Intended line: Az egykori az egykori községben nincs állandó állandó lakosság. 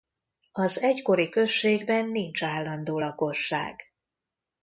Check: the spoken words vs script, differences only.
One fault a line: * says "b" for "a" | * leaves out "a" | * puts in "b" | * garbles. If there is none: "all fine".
* leaves out "az egykori"
* leaves out "állandó"